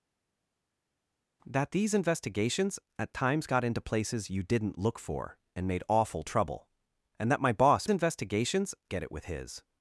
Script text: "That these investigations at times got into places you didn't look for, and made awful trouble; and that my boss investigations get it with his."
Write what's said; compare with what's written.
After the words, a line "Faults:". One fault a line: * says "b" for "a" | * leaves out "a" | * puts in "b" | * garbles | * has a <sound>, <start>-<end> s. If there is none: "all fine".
"That these investigations at times got into places you didn't look for, and made awful trouble; and that my boss investigations get it with his."
Faults:
all fine